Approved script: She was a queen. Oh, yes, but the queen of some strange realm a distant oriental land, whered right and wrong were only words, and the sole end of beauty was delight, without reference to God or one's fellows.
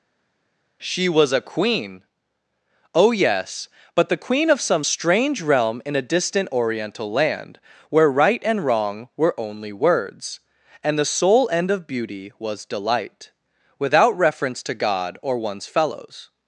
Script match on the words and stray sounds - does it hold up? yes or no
no